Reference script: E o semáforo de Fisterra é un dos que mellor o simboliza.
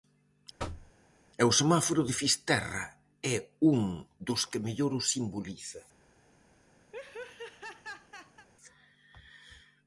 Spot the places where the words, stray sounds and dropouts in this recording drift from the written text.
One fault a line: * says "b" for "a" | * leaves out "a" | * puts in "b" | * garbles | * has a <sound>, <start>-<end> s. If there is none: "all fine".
* has a thud, 0.6-0.9 s
* has a laugh, 6.9-8.5 s